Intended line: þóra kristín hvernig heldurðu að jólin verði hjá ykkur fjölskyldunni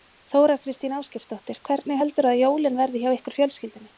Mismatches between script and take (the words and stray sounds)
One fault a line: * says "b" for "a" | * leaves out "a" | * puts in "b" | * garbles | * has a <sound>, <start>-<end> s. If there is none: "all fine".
* puts in "ásgeirsdóttir"